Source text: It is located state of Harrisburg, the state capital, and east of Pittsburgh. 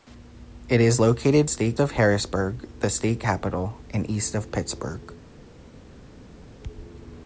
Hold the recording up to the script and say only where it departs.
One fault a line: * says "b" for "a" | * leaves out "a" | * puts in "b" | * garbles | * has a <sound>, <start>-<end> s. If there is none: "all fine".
all fine